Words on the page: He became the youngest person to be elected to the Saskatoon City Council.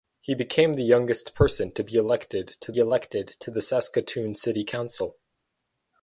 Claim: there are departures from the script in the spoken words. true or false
true